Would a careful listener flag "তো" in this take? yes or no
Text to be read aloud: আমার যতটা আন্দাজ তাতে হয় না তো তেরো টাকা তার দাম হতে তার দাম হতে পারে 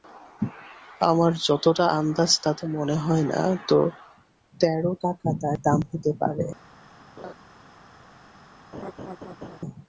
no